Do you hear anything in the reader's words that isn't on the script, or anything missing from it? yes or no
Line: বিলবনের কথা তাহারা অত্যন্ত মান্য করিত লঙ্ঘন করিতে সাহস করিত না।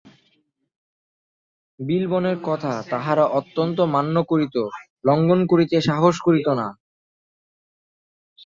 no